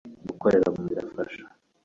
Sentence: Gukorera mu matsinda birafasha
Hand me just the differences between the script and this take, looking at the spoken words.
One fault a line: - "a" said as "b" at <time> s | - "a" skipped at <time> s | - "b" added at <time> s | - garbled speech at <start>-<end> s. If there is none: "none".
- "matsinda" skipped at 0.8 s